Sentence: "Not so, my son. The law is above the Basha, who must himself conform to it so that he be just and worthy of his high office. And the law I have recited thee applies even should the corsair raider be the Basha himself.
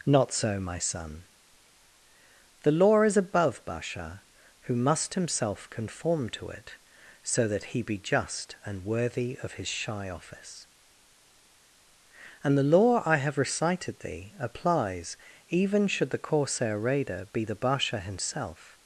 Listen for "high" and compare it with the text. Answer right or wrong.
wrong